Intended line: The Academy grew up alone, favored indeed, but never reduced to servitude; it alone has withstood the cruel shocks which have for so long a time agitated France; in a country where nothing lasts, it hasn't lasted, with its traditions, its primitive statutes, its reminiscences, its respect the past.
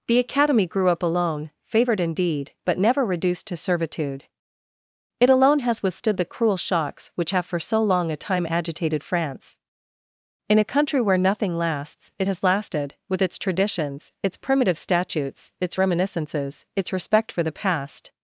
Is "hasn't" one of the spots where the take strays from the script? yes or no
yes